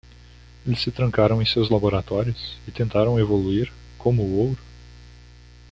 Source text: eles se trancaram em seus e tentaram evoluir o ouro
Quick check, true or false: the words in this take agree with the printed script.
false